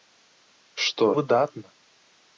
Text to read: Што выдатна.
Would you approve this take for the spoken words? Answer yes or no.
yes